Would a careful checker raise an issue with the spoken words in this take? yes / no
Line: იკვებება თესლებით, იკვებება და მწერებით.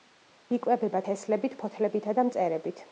yes